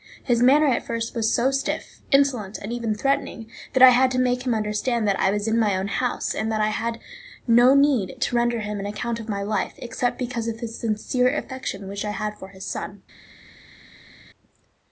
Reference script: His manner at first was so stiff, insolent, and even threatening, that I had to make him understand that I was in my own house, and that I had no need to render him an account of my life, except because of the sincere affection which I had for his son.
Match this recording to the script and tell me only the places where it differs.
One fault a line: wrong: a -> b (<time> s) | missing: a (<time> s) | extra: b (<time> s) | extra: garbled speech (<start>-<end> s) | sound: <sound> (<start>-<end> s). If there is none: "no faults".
no faults